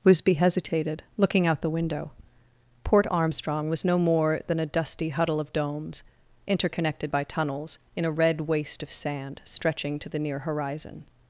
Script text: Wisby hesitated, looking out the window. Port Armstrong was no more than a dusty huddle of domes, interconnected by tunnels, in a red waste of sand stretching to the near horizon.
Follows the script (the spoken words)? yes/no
yes